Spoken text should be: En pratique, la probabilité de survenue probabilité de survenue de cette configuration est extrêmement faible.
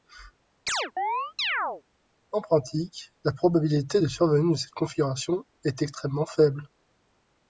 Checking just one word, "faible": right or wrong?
right